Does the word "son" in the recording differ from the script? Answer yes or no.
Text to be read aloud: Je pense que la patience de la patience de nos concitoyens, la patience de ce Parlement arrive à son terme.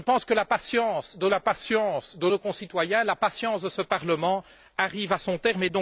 no